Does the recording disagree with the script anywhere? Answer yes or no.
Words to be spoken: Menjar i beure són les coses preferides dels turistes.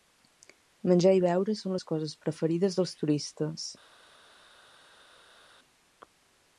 no